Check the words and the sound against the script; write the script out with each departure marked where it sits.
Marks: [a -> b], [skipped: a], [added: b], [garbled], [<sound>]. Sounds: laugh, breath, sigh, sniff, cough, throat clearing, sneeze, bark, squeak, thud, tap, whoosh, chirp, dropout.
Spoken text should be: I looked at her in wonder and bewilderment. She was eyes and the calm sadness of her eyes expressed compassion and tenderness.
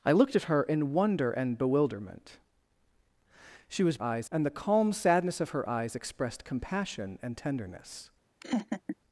I looked at her in wonder and bewilderment. She was eyes and the calm sadness of her eyes expressed compassion and tenderness. [laugh]